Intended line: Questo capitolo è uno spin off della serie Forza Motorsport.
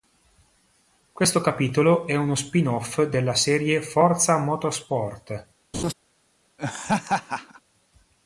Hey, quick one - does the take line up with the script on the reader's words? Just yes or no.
yes